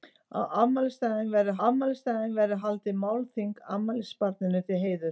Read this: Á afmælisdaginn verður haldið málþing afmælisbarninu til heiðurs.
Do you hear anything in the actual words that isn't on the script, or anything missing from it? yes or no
yes